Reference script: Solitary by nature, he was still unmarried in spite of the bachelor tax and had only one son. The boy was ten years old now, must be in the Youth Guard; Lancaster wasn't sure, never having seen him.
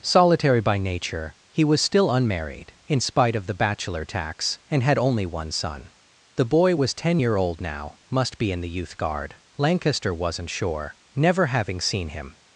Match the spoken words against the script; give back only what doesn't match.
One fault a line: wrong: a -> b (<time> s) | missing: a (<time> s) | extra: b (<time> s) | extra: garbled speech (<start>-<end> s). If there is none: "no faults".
wrong: years -> year (7.2 s)